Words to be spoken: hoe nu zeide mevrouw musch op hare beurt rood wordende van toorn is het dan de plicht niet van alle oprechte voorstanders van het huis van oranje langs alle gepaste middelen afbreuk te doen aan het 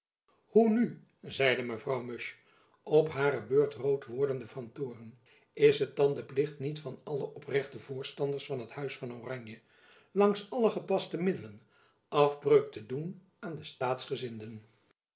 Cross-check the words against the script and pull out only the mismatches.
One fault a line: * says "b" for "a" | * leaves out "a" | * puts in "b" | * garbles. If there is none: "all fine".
* says "de" for "het"